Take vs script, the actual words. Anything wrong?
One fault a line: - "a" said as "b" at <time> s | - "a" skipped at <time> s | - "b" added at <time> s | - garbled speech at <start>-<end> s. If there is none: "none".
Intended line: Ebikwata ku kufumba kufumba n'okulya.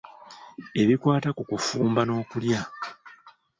- "kufumba" skipped at 2.0 s